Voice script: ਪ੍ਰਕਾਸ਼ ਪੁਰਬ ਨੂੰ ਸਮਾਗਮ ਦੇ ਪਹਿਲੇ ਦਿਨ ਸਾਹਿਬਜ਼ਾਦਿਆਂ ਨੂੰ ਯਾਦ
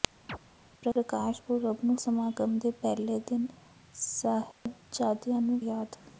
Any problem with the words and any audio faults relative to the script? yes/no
yes